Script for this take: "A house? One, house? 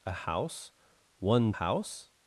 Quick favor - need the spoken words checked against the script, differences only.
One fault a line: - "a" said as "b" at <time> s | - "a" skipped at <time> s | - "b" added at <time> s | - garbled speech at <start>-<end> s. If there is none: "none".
none